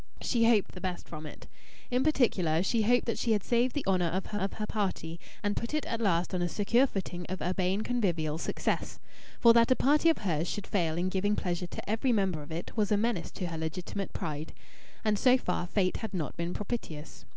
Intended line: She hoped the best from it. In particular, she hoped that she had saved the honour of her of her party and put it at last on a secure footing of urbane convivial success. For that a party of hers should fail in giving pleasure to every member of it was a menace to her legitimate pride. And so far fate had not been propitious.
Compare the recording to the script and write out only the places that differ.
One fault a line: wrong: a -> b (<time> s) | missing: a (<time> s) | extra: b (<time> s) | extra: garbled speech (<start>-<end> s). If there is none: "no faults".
no faults